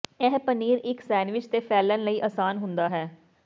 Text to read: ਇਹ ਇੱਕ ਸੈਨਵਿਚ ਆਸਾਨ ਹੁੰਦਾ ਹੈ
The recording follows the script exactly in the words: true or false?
false